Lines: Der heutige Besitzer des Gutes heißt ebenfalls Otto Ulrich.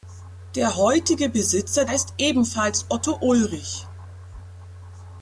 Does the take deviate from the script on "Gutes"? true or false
true